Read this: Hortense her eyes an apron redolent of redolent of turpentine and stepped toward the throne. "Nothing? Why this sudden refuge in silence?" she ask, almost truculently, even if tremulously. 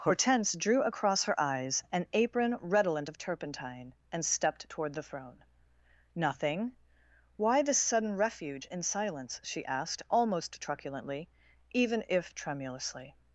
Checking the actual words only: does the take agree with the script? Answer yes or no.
no